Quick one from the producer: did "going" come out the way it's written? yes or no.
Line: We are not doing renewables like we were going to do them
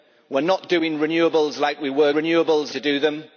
no